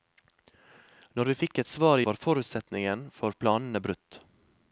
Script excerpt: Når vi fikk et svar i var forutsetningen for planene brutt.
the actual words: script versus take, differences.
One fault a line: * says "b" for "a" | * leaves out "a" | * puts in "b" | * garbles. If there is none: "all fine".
all fine